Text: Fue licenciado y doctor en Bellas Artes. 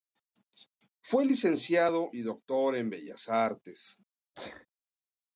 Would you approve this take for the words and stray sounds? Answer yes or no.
no